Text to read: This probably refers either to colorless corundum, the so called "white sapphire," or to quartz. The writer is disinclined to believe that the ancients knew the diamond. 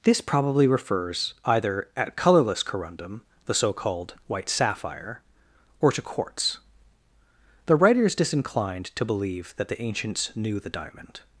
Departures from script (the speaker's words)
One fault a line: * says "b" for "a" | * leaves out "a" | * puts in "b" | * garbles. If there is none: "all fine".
* says "at" for "to"